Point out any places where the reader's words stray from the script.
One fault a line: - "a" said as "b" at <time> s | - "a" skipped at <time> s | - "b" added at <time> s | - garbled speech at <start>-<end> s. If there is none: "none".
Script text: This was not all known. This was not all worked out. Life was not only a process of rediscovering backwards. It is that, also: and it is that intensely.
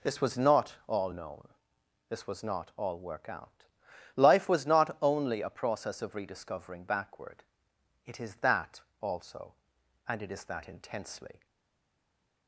- "worked" said as "work" at 3.0 s
- "backwards" said as "backward" at 6.8 s